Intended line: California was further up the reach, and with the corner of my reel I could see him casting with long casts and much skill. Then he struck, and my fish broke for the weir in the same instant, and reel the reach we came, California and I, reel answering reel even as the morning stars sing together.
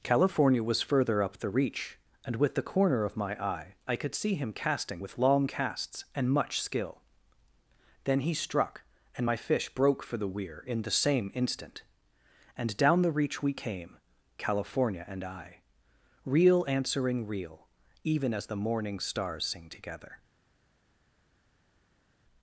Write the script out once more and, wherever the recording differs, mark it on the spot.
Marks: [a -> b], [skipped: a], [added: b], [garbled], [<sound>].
California was further up the reach, and with the corner of my [reel -> eye] I could see him casting with long casts and much skill. Then he struck, and my fish broke for the weir in the same instant, and [reel -> down] the reach we came, California and I, reel answering reel even as the morning stars sing together.